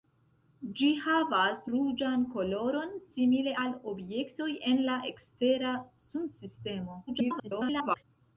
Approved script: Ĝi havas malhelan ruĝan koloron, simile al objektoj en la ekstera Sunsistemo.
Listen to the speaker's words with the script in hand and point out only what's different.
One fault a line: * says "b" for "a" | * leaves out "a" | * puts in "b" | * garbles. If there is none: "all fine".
* leaves out "malhelan"
* garbles